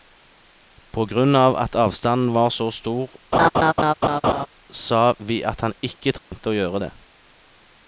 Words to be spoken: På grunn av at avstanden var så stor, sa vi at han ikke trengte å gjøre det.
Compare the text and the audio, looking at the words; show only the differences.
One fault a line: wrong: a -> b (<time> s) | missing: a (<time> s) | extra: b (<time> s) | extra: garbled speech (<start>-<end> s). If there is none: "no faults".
no faults